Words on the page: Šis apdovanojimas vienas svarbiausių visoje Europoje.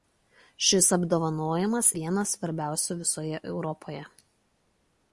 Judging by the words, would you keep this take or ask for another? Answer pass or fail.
pass